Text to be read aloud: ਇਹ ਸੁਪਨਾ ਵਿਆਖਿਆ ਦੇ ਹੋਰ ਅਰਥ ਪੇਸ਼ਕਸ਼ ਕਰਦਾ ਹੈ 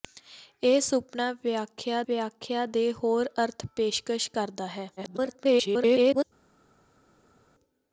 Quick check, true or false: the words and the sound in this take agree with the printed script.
false